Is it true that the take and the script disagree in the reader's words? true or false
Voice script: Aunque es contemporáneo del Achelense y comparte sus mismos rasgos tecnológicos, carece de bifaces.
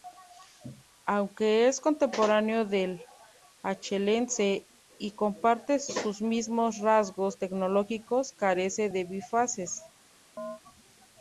false